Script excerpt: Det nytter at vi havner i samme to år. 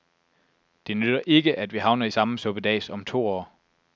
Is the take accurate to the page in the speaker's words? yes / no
no